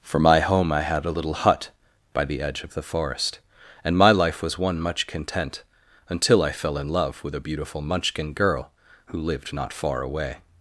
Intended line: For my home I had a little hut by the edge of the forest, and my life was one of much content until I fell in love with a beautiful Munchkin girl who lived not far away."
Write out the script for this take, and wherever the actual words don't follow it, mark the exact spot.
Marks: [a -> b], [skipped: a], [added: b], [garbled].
For my home I had a little hut by the edge of the forest, and my life was one [skipped: of] much content until I fell in love with a beautiful Munchkin girl who lived not far away."